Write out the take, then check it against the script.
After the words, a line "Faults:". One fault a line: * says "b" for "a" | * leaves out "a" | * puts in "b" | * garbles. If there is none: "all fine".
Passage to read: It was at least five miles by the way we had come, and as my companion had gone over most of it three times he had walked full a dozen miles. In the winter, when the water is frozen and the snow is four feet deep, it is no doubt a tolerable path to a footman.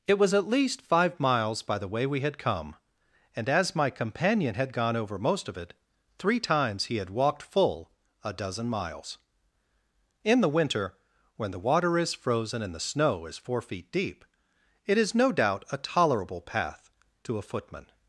It was at least five miles by the way we had come, and as my companion had gone over most of it three times he had walked full a dozen miles. In the winter, when the water is frozen and the snow is four feet deep, it is no doubt a tolerable path to a footman.
Faults:
all fine